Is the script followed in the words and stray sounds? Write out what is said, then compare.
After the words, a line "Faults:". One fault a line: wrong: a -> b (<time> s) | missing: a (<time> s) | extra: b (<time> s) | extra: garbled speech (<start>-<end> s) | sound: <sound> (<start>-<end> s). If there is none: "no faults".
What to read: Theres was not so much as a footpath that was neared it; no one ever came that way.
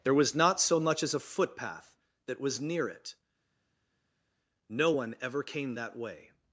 There was not so much as a footpath that was near it; no one ever came that way.
Faults:
wrong: Theres -> There (0.0 s)
wrong: neared -> near (2.6 s)